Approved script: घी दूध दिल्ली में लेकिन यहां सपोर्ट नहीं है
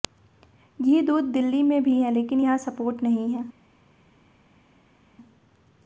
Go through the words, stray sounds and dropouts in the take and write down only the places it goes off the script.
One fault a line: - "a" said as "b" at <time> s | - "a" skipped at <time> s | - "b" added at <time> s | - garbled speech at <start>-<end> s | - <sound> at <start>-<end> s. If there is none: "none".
- "भी है" added at 1.8 s